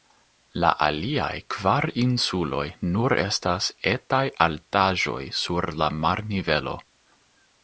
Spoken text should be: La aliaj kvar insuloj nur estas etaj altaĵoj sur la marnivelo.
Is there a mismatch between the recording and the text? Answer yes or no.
no